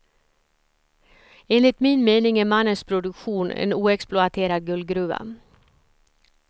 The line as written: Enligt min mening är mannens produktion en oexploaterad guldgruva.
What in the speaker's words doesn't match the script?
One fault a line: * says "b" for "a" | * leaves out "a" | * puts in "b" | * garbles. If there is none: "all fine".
all fine